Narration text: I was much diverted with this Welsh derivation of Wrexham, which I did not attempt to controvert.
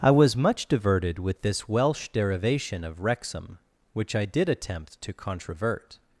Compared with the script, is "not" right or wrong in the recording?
wrong